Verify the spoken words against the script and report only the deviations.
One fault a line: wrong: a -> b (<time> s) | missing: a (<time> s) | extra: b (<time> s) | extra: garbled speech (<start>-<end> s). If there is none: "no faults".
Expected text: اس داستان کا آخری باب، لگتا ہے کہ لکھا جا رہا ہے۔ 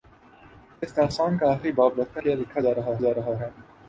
missing: ہے (2.2 s)
extra: جا رہا (3.0 s)